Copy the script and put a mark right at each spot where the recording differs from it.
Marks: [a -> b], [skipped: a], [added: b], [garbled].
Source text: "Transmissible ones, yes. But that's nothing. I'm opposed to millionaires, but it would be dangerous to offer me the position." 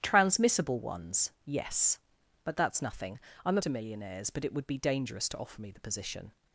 "Transmissible ones, yes. But that's nothing. I'm [skipped: opposed] to millionaires, but it would be dangerous to offer me the position."